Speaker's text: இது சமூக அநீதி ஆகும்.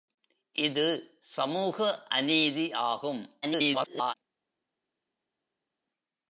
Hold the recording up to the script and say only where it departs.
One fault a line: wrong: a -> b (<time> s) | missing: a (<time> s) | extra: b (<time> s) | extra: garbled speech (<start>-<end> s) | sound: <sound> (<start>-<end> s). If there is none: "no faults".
extra: garbled speech (3.4-4.1 s)